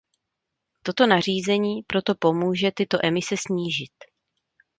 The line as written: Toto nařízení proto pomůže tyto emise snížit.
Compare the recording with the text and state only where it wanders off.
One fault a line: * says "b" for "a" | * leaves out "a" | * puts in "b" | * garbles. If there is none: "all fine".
all fine